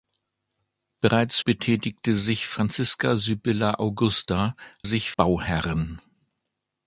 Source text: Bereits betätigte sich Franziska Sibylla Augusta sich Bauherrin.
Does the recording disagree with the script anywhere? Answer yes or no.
no